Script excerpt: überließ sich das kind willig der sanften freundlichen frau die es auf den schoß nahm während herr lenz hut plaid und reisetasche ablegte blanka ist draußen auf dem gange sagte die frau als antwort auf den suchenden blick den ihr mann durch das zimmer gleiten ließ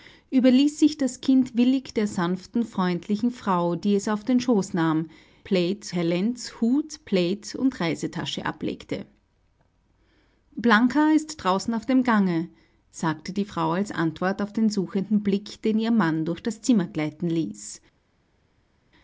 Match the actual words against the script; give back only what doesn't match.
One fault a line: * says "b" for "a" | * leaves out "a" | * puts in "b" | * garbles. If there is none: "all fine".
* says "plaid" for "während"